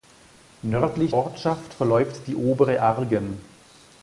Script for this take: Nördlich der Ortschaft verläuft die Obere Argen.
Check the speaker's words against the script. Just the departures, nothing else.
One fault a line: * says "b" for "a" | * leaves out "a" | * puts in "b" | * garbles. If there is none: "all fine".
* leaves out "der"